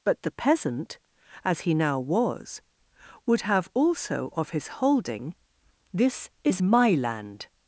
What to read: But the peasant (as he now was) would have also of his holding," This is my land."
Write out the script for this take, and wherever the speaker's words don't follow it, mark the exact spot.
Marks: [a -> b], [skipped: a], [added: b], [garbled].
But the peasant (as he now was) would have also of his holding," This is my land."